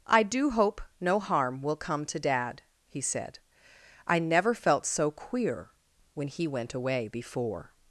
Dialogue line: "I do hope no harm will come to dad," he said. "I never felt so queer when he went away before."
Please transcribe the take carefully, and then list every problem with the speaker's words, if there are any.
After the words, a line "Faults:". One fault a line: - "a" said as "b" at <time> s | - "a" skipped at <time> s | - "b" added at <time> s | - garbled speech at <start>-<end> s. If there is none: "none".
"I do hope no harm will come to dad," he said. "I never felt so queer when he went away before."
Faults:
none